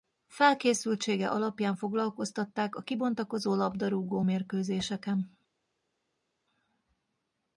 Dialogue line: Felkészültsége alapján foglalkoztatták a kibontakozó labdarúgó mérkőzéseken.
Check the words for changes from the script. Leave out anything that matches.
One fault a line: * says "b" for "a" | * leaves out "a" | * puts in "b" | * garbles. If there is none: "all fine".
all fine